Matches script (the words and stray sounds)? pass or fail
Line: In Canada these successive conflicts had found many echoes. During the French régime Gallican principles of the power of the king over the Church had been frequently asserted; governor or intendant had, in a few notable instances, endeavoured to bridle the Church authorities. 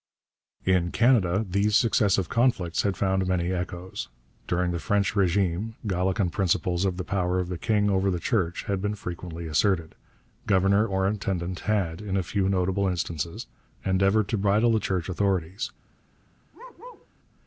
fail